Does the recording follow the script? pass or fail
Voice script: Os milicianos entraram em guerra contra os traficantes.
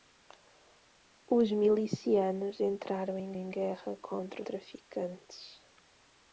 fail